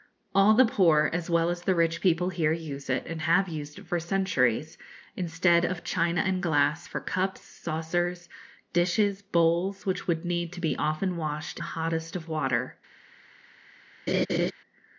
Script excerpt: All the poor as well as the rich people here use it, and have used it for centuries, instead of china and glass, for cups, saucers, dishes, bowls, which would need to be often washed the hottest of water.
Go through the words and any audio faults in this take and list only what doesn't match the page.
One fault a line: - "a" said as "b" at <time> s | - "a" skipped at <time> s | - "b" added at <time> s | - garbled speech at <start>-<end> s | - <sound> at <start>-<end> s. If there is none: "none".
- laugh at 14.1-14.5 s